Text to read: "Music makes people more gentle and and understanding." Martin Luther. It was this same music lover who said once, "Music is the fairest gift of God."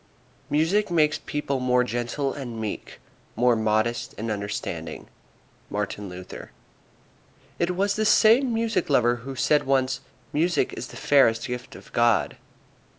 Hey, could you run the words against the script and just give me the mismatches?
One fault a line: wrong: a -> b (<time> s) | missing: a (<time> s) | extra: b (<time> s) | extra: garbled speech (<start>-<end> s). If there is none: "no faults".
extra: meek more modest (2.6 s)